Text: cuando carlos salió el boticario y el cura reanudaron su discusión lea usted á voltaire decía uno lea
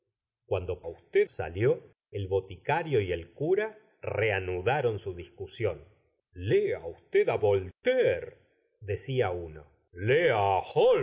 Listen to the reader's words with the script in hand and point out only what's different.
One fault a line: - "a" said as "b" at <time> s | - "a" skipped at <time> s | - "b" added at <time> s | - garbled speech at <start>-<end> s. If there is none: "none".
- "carlos" said as "usted" at 0.9 s